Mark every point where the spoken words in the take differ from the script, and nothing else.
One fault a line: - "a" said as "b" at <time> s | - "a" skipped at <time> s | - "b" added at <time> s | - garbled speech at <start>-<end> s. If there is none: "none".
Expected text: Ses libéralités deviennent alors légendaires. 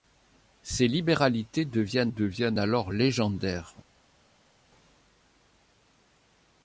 - "deviennent" added at 2.1 s